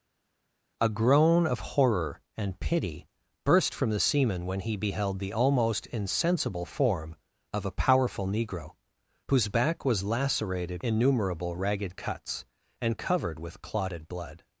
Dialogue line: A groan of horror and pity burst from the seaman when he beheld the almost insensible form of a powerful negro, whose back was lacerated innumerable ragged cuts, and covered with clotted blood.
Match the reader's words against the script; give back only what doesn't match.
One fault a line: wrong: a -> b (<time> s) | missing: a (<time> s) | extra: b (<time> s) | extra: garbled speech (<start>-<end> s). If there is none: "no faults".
no faults